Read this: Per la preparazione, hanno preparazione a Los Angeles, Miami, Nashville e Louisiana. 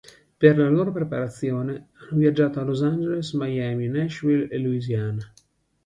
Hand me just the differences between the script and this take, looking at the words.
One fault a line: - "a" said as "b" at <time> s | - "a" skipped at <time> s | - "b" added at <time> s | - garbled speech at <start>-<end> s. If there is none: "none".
- "loro" added at 0.7 s
- "preparazione" said as "viaggiato" at 2.2 s